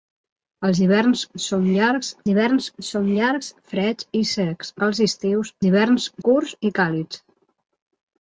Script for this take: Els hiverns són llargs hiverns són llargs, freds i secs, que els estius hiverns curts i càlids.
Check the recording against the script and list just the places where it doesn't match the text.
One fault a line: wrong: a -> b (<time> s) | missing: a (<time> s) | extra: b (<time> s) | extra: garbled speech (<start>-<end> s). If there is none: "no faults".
no faults